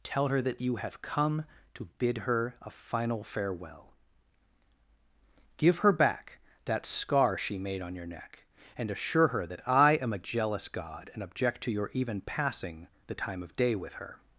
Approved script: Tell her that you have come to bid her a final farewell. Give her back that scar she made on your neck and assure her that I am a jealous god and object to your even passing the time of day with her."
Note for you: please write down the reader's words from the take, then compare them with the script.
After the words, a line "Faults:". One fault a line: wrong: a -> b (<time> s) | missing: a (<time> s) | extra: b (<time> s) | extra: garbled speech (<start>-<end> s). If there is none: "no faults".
Tell her that you have come to bid her a final farewell. Give her back that scar she made on your neck and assure her that I am a jealous god and object to your even passing the time of day with her."
Faults:
no faults